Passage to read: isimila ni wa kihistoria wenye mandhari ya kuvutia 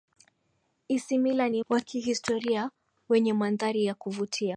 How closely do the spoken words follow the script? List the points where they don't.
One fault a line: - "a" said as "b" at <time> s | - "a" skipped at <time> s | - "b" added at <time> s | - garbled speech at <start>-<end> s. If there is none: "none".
none